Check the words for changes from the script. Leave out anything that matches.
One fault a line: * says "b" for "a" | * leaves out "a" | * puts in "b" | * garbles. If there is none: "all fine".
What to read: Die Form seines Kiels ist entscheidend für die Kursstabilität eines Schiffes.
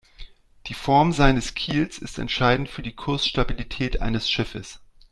all fine